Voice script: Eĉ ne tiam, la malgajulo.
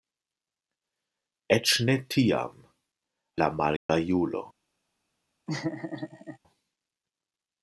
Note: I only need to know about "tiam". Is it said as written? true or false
true